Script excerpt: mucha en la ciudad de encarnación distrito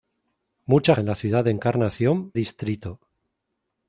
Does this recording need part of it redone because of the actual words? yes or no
no